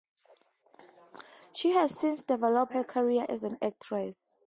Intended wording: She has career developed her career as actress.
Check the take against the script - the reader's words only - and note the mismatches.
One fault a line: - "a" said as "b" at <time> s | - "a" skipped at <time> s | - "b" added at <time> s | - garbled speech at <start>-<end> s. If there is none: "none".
- "career" said as "since" at 2.0 s
- "an" added at 3.4 s